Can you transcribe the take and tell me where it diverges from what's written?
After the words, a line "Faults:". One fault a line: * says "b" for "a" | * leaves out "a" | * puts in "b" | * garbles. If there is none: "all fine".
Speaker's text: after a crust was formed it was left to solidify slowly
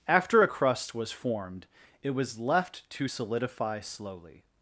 after a crust was formed it was left to solidify slowly
Faults:
all fine